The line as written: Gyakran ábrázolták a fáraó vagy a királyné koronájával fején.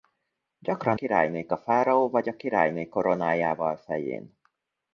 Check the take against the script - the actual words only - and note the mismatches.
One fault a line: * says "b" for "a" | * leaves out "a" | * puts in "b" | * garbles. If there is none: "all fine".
* says "királyné" for "ábrázolták"